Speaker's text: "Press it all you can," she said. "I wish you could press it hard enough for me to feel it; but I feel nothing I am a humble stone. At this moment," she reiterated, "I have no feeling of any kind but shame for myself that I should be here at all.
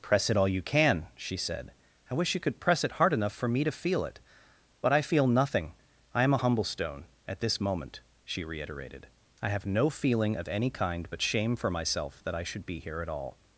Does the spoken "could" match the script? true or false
true